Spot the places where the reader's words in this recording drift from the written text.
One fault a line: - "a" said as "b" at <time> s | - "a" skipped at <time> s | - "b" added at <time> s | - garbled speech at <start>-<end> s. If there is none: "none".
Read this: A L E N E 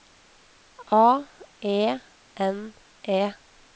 - "L" skipped at 1.3 s